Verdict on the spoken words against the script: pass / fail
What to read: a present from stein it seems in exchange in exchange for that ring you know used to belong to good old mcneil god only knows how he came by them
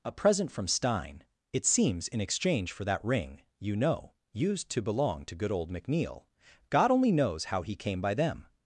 fail